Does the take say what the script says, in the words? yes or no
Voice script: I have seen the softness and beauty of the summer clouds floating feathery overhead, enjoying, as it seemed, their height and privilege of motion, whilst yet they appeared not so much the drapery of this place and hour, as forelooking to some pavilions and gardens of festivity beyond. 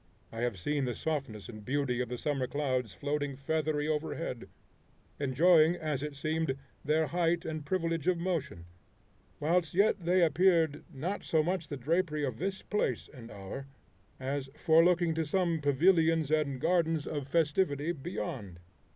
yes